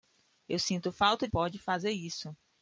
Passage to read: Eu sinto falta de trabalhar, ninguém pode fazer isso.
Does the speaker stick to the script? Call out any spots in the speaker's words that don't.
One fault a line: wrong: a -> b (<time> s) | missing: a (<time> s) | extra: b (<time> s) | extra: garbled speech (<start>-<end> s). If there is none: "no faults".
missing: de trabalhar ninguém (1.3 s)